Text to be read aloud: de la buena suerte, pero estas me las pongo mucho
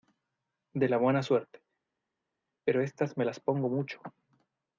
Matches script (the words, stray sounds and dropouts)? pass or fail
pass